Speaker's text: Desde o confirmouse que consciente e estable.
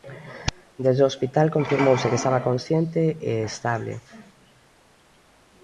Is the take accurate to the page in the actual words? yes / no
no